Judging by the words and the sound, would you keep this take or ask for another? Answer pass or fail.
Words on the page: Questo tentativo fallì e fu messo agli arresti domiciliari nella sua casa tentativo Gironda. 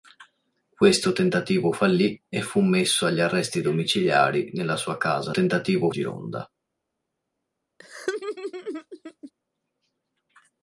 fail